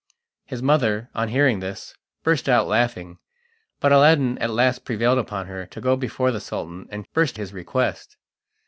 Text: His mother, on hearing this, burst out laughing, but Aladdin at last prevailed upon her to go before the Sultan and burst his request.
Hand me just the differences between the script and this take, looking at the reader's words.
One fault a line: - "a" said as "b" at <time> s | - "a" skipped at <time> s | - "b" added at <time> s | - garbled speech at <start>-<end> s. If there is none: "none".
none